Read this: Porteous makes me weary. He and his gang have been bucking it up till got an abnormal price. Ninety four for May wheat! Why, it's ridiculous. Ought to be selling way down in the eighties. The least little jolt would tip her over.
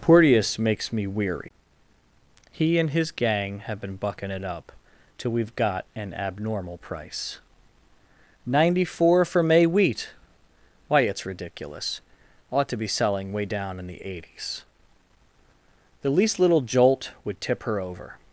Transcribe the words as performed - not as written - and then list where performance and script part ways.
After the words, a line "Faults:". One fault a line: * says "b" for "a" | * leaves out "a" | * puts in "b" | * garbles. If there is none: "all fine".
Porteous makes me weary. He and his gang have been bucking it up till we've got an abnormal price. Ninety four for May wheat! Why, it's ridiculous. Ought to be selling way down in the eighties. The least little jolt would tip her over.
Faults:
* puts in "we've"